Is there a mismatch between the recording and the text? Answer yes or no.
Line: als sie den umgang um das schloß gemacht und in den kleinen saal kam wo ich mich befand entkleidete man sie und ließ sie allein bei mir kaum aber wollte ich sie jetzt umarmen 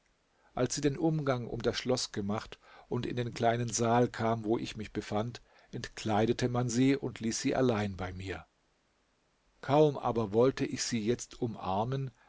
no